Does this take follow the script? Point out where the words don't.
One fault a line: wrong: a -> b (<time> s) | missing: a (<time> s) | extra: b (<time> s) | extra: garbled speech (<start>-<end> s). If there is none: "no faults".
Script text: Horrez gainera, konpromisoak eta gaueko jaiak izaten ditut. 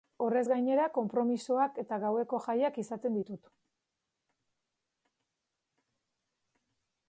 no faults